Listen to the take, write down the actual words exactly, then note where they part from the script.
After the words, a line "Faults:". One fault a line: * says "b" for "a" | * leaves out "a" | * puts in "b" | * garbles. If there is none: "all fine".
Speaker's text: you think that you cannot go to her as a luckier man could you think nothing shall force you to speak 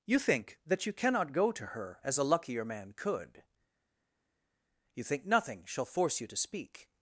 you think that you cannot go to her as a luckier man could you think nothing shall force you to speak
Faults:
all fine